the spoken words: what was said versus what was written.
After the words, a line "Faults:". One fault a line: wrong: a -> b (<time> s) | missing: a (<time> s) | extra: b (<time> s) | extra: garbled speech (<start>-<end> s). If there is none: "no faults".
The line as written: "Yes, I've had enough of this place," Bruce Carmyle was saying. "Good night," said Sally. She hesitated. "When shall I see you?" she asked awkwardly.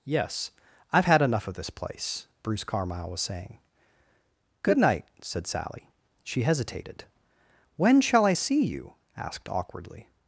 "Yes, I've had enough of this place," Bruce Carmyle was saying. "Good night," said Sally. She hesitated. "When shall I see you?" asked awkwardly.
Faults:
missing: she (8.9 s)